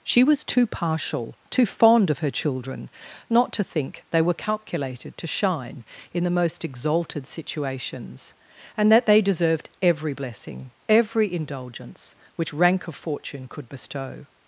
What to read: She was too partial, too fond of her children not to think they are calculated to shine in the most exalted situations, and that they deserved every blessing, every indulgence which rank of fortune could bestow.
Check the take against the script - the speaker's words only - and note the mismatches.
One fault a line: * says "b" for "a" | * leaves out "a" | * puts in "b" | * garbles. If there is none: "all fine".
* says "were" for "are"